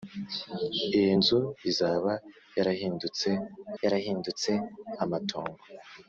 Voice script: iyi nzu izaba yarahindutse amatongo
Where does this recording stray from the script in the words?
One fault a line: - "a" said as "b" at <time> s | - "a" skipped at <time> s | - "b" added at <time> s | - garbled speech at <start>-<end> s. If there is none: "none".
- "yarahindutse" added at 3.8 s